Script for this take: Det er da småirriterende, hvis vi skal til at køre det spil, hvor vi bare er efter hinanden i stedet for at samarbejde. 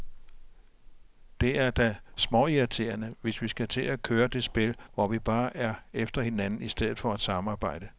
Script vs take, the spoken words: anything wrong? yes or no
no